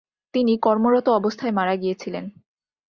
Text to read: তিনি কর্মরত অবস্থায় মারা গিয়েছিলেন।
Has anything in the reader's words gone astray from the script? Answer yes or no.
no